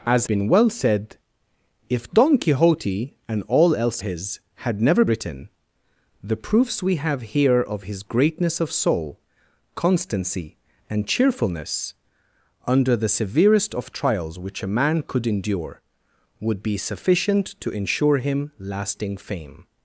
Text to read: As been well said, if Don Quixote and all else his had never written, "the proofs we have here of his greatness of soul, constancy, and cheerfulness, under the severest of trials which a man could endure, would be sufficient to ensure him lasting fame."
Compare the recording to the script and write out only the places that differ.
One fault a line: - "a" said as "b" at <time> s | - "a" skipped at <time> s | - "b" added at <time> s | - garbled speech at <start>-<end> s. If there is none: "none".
none